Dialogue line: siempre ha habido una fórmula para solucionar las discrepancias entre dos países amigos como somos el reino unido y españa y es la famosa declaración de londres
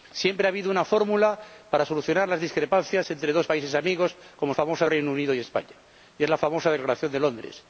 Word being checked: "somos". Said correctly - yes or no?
no